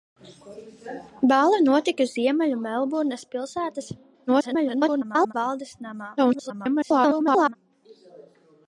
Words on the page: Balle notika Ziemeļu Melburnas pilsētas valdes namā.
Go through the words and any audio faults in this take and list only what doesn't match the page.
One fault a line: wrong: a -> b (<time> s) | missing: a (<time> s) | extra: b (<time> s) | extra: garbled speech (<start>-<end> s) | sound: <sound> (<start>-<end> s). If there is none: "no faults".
extra: garbled speech (4.3-5.3 s)
extra: garbled speech (6.2-7.6 s)